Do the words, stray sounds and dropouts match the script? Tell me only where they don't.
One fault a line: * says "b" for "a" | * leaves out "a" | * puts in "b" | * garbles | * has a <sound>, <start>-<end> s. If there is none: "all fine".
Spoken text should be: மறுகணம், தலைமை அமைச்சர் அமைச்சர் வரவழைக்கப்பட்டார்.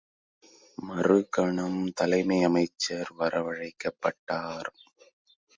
* leaves out "அமைச்சர்"